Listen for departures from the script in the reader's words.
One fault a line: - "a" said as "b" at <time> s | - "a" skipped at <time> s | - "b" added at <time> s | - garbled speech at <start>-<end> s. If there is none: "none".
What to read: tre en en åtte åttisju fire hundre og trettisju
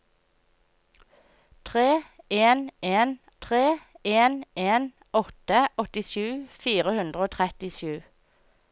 - "tre en en" added at 3.5 s